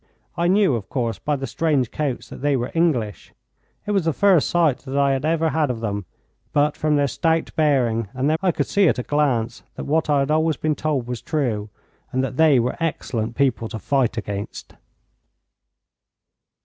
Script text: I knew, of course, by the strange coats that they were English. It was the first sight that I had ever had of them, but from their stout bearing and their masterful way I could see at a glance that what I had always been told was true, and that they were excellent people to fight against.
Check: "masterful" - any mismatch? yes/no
yes